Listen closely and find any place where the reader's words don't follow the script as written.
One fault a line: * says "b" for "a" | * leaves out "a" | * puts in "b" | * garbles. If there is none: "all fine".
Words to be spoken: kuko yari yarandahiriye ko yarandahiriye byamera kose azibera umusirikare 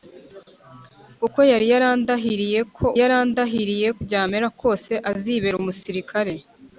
all fine